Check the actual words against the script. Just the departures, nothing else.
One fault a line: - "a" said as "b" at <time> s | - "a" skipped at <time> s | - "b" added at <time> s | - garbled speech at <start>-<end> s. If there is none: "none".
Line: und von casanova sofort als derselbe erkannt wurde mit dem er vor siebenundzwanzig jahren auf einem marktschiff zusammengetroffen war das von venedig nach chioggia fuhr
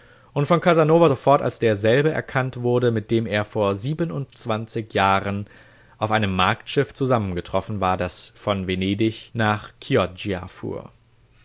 none